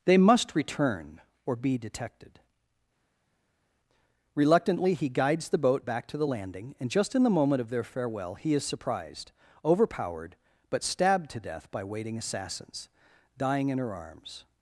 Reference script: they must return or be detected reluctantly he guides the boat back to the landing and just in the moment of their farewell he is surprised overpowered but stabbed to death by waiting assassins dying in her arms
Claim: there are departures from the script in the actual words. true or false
false